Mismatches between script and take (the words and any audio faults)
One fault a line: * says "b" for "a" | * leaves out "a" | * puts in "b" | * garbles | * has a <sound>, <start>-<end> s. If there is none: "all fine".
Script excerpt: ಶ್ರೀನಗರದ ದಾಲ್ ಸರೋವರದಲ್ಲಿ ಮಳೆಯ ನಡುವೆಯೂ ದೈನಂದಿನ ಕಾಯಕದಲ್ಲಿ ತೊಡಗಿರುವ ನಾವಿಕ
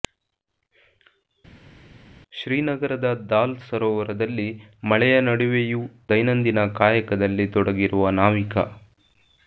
all fine